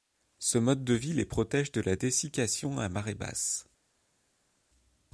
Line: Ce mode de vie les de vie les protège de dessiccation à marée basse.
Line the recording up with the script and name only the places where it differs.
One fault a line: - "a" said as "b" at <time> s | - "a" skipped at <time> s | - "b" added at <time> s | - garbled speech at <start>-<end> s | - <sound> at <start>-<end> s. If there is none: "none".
- "de vie les" skipped at 1.2 s
- "la" added at 1.8 s